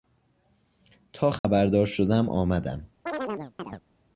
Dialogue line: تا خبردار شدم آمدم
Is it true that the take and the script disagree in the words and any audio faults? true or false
true